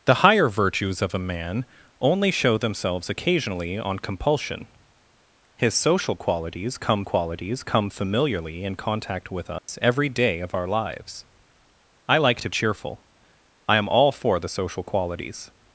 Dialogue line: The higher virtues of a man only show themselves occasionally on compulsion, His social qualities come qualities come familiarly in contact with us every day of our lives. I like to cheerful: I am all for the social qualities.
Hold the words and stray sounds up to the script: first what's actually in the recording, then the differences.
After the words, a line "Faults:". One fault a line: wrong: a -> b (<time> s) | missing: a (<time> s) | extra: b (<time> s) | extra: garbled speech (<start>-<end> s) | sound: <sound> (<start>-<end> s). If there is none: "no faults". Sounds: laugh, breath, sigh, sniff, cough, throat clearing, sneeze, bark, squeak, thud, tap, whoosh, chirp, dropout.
The higher virtues of a man only show themselves occasionally on compulsion, His social qualities come qualities come familiarly in contact with us every day of our lives. I like to cheerful: I am all for the social qualities.
Faults:
sound: dropout (9.6-9.7 s)